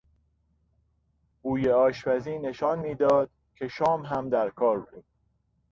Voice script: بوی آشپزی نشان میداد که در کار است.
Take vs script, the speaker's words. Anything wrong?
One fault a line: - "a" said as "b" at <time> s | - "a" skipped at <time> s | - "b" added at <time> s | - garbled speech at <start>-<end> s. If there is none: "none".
- "شام هم" added at 3.7 s
- "است" said as "بود" at 4.8 s